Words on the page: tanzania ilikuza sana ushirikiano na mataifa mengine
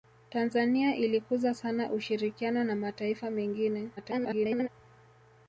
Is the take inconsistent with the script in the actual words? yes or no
yes